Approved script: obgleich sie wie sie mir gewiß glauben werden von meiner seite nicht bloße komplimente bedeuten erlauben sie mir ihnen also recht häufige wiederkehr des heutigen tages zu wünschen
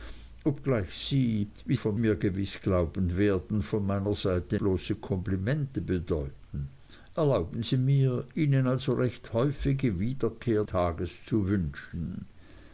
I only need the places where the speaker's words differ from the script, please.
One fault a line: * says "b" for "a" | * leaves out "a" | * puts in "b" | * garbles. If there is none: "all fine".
* says "von" for "sie"
* leaves out "nicht"
* leaves out "des heutigen"